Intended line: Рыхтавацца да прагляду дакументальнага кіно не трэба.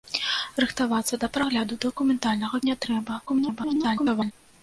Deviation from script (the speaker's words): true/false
true